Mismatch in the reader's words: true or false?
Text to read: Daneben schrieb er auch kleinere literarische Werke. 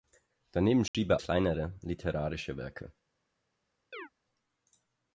true